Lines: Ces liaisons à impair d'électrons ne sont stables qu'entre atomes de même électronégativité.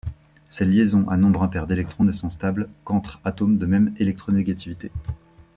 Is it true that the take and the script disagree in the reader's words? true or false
true